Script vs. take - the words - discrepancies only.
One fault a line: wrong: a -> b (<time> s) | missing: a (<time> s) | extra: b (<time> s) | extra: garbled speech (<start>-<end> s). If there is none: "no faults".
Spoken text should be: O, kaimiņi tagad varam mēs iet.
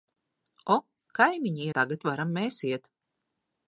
no faults